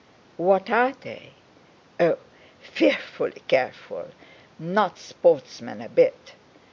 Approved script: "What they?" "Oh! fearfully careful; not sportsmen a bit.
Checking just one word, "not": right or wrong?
right